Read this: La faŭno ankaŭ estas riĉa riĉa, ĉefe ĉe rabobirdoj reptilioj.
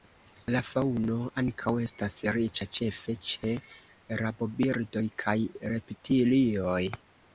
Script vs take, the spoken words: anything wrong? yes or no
yes